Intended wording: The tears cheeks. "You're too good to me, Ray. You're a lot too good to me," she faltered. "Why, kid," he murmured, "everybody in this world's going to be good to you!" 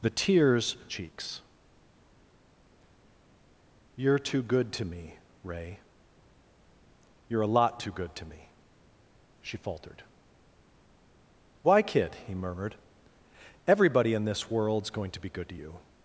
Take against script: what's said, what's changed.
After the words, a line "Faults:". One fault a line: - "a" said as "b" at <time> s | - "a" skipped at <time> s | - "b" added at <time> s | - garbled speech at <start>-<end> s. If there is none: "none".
The tears cheeks. "You're too good to me, Ray. You're a lot too good to me," she faltered. "Why, kid," he murmured, "everybody in this world's going to be good to you!"
Faults:
none